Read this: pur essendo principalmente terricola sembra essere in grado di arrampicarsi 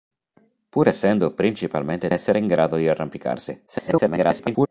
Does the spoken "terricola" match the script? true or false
false